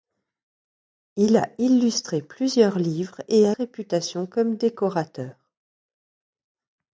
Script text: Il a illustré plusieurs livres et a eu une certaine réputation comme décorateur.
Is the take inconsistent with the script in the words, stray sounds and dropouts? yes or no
yes